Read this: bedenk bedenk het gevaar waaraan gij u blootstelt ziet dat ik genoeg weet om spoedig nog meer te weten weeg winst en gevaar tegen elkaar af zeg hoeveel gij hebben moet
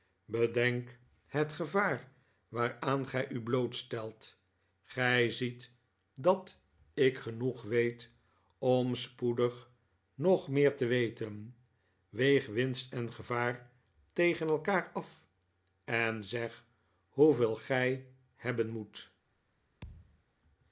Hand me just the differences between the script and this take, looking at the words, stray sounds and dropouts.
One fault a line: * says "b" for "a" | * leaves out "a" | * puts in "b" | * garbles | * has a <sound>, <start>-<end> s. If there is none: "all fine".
* leaves out "bedenk"
* puts in "gij"
* puts in "en"
* has a thud, 19.8-20.2 s